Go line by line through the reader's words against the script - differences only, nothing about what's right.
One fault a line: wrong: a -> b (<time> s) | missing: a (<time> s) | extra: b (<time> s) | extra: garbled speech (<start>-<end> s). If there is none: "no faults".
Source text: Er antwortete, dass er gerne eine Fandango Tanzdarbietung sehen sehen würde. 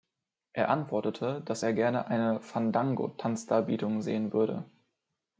missing: sehen (4.3 s)